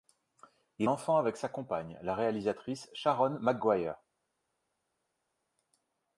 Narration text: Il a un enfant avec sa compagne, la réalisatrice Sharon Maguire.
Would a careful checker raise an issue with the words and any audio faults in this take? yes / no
yes